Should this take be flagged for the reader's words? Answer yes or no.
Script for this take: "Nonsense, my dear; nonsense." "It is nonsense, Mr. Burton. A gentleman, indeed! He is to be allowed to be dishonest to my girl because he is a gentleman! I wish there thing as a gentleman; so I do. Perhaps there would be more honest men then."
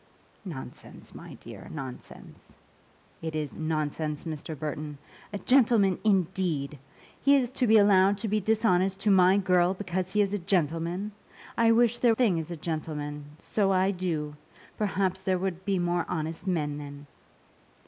no